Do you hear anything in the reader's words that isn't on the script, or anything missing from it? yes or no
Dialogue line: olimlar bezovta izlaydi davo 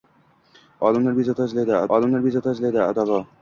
yes